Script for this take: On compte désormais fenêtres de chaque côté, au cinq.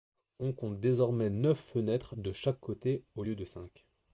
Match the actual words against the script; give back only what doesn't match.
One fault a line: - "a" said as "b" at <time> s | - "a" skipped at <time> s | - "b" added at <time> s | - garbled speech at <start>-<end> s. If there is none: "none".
- "neuf" added at 1.3 s
- "lieu de" added at 3.2 s